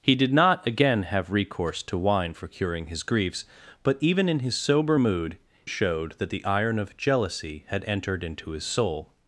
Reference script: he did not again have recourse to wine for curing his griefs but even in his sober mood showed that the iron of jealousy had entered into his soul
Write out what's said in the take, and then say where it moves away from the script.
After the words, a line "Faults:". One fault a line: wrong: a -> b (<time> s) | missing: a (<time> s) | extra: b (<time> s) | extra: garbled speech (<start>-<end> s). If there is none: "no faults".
he did not again have recourse to wine for curing his griefs but even in his sober mood showed that the iron of jealousy had entered into his soul
Faults:
no faults